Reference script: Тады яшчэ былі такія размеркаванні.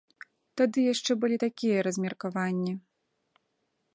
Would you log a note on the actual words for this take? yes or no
no